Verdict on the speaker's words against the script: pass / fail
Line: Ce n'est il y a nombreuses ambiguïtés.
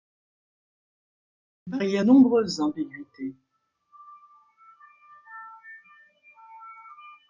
pass